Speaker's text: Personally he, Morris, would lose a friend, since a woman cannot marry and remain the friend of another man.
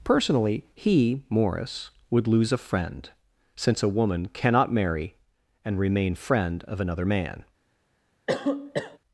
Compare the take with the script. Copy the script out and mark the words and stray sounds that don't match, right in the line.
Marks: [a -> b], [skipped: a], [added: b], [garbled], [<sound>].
Personally he, Morris, would lose a friend, since a woman cannot marry and remain [skipped: the] friend of another man. [cough]